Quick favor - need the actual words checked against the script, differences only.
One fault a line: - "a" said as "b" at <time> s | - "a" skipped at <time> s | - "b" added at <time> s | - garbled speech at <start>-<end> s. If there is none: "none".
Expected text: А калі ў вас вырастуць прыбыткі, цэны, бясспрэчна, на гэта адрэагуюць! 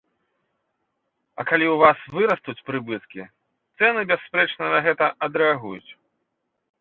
none